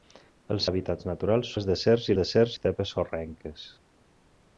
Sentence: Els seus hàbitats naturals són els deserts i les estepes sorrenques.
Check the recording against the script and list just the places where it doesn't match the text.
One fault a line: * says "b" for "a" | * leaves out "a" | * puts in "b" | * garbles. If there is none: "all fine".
* leaves out "seus"
* leaves out "són"
* says "deserts" for "les"